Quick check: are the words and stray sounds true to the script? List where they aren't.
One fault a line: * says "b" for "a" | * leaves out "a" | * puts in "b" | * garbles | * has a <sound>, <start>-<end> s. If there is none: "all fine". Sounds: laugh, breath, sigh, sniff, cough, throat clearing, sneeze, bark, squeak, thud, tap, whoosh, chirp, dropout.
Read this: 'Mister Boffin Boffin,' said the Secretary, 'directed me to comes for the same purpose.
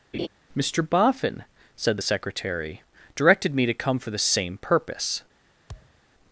* has a laugh, 0.1-0.3 s
* leaves out "Boffin"
* says "come" for "comes"
* has a thud, 5.7-6.0 s